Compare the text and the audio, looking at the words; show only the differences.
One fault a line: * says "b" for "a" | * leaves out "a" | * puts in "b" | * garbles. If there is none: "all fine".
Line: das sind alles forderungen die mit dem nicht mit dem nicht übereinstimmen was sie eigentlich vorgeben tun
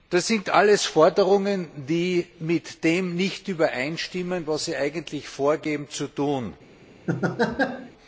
* leaves out "mit dem nicht"
* puts in "zu"